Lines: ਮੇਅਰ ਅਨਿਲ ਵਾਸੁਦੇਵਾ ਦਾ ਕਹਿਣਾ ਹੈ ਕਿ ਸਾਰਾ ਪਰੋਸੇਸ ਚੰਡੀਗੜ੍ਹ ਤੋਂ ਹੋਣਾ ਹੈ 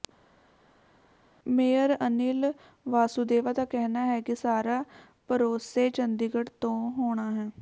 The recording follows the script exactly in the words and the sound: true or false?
true